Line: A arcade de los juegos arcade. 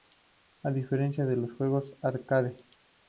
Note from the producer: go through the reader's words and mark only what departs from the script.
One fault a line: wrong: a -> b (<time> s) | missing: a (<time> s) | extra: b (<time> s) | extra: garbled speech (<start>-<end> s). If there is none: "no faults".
wrong: arcade -> diferencia (0.7 s)